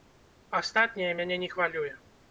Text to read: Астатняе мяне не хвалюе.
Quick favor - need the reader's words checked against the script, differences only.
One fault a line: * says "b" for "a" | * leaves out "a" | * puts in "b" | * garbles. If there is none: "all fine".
all fine